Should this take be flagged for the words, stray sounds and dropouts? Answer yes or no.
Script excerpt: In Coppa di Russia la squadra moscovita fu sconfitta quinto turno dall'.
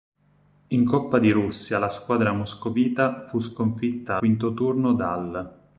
no